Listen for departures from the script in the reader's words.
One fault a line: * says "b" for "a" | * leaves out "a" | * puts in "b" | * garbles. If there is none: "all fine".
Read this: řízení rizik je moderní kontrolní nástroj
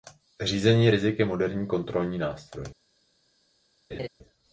all fine